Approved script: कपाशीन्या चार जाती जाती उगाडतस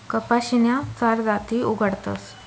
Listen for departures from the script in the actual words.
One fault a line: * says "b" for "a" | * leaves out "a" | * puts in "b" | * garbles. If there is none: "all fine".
* leaves out "जाती"